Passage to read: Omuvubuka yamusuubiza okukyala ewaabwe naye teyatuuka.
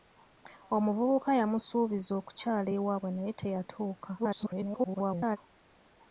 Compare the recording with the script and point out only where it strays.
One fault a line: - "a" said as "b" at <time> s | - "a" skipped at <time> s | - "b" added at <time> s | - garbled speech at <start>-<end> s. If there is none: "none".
- garbled speech at 4.2-5.4 s